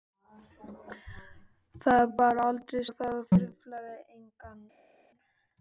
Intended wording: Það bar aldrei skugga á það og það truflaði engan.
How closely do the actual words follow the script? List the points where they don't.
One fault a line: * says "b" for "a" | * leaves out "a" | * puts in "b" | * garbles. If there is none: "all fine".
* leaves out "skugga"
* leaves out "það"